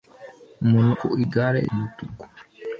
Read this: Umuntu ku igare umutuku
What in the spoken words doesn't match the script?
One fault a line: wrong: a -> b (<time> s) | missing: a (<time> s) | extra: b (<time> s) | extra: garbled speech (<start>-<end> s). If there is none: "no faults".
no faults